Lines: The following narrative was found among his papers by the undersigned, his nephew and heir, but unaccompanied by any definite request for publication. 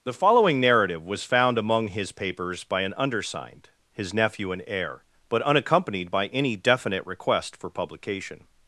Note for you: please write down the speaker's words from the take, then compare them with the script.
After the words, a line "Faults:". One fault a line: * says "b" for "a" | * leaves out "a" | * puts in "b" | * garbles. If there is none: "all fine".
The following narrative was found among his papers by an undersigned, his nephew and heir, but unaccompanied by any definite request for publication.
Faults:
* says "an" for "the"